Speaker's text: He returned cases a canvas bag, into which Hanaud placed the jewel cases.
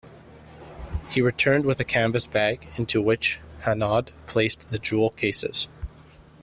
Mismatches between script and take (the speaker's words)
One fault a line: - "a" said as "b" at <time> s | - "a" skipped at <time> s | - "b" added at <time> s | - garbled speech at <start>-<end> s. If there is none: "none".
- "cases" said as "with" at 1.6 s